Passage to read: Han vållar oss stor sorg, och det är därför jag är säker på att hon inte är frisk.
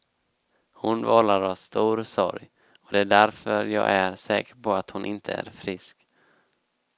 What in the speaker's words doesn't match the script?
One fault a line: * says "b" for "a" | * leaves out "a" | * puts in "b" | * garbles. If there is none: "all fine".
* says "Hon" for "Han"